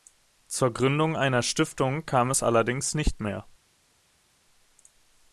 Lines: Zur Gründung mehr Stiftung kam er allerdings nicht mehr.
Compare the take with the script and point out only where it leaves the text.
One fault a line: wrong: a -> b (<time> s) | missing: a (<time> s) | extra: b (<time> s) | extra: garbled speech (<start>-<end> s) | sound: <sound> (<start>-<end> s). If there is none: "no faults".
wrong: mehr -> einer (1.1 s)
wrong: er -> es (2.3 s)